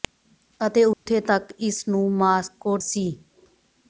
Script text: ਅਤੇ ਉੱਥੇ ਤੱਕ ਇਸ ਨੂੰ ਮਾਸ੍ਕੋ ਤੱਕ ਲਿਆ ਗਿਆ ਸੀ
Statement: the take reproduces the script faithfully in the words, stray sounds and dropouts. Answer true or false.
false